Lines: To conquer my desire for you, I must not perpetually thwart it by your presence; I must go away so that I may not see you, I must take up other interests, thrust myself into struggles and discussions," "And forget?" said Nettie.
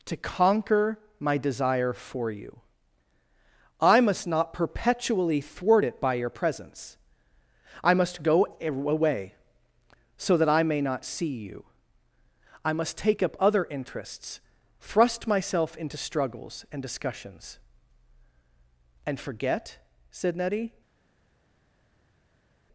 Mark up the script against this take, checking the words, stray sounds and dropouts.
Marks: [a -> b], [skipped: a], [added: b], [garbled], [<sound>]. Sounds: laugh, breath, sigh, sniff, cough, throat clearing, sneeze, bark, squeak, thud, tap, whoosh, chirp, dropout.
To conquer my desire for you, I must not perpetually thwart it by your presence; I must go away so that I may not see you, I must take up other interests, thrust myself into struggles and discussions," "And forget?" said Nettie.